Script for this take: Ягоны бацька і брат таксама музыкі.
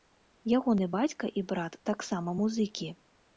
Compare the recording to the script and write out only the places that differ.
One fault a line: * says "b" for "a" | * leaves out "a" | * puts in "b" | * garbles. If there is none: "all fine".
all fine